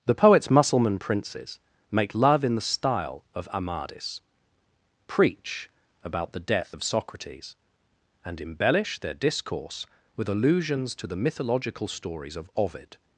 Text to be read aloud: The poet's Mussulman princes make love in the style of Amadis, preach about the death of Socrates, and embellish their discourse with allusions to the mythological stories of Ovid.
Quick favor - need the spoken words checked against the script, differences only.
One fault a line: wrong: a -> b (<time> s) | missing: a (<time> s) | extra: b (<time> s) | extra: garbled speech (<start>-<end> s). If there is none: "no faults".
no faults